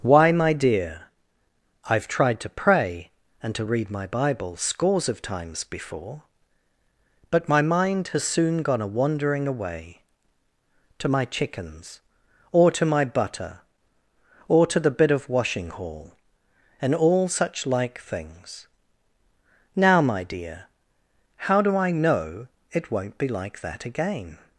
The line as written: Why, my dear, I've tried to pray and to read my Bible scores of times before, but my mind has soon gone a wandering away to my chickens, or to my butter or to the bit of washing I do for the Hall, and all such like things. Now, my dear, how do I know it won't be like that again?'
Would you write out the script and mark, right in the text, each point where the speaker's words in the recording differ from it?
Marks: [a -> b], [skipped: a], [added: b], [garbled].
Why, my dear, I've tried to pray and to read my Bible scores of times before, but my mind has soon gone a wandering away to my chickens, or to my butter or to the bit of washing [skipped: I do for the] Hall, and all such like things. Now, my dear, how do I know it won't be like that again?'